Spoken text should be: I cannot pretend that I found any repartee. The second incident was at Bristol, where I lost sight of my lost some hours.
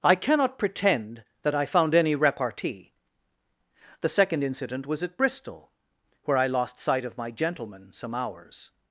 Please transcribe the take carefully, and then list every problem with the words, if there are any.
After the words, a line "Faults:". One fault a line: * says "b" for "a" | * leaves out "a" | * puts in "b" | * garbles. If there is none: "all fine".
I cannot pretend that I found any repartee. The second incident was at Bristol, where I lost sight of my gentleman some hours.
Faults:
* says "gentleman" for "lost"